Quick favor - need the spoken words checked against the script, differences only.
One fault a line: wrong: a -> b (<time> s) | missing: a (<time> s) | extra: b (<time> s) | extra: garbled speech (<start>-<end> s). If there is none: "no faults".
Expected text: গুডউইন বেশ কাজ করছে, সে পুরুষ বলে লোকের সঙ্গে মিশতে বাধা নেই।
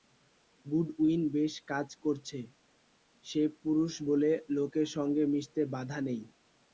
no faults